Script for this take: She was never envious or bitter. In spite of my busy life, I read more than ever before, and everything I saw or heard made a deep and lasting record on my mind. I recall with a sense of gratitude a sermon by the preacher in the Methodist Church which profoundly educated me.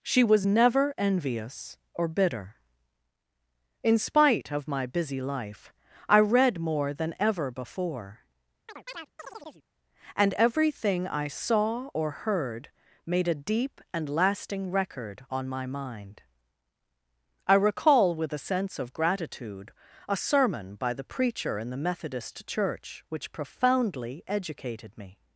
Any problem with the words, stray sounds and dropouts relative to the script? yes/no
yes